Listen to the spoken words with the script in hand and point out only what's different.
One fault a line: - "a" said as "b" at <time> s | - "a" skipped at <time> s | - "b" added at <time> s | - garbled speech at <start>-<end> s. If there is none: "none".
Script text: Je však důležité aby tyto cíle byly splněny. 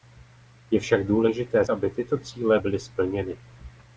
none